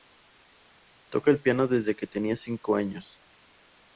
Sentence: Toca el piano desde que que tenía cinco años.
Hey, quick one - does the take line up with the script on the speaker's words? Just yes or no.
no